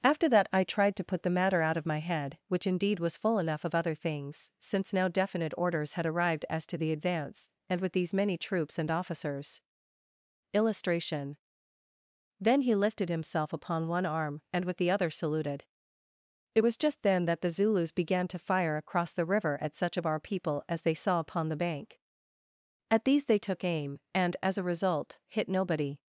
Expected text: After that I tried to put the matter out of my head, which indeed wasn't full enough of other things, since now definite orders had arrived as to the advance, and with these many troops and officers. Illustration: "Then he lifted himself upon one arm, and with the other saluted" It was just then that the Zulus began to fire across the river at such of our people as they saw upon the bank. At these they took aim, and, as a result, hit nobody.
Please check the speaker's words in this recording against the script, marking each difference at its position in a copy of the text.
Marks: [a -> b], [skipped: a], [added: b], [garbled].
After that I tried to put the matter out of my head, which indeed [wasn't -> was] full enough of other things, since now definite orders had arrived as to the advance, and with these many troops and officers. Illustration: "Then he lifted himself upon one arm, and with the other saluted" It was just then that the Zulus began to fire across the river at such of our people as they saw upon the bank. At these they took aim, and, as a result, hit nobody.